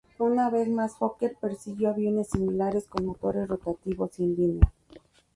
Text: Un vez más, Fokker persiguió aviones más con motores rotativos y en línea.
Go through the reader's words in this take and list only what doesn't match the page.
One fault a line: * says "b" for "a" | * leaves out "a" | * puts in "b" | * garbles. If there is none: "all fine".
* says "Una" for "Un"
* says "similares" for "más"